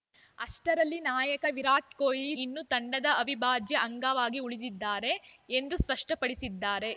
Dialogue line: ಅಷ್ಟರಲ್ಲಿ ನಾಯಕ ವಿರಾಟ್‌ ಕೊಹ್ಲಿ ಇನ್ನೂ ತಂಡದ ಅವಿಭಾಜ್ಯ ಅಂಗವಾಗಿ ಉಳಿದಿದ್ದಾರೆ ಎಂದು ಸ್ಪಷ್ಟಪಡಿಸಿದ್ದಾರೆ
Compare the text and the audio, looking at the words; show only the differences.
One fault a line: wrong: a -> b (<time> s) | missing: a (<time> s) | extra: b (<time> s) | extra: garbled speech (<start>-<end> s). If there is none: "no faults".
no faults